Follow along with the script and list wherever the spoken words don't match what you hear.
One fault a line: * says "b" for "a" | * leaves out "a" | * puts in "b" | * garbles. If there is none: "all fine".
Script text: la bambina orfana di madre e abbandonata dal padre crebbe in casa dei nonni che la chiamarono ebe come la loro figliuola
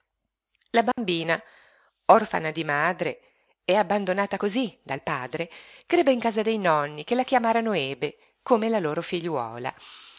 * puts in "cosí"